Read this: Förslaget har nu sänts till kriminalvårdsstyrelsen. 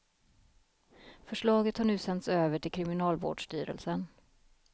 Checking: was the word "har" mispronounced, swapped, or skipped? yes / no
no